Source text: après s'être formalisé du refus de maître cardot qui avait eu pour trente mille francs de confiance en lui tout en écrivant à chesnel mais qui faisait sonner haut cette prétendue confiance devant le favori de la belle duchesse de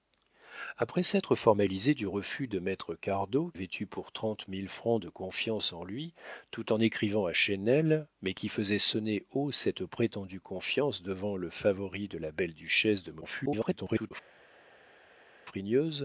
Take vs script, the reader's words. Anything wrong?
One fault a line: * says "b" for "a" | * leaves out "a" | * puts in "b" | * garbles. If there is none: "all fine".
* leaves out "qui"
* garbles